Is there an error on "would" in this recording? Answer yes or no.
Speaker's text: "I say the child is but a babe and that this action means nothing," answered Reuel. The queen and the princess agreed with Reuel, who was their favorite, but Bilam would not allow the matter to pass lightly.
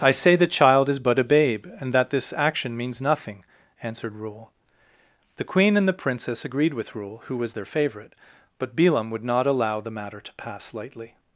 no